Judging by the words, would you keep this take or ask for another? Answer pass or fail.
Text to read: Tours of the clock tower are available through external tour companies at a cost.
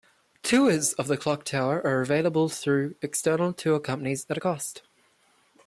pass